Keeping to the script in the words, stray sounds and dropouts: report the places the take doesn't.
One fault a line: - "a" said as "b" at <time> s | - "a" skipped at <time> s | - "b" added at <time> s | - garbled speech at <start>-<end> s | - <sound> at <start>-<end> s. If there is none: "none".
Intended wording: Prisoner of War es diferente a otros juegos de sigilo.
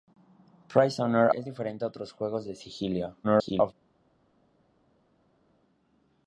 - "of War" skipped at 1.3 s
- garbled speech at 3.2-3.7 s